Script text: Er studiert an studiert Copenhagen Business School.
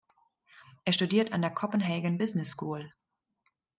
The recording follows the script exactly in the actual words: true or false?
false